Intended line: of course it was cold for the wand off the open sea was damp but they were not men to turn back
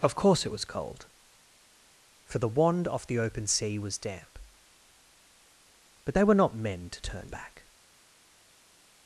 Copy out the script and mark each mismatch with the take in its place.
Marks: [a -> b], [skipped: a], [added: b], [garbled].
of course it was cold for the wand off the open sea was damp but they were not men to turn back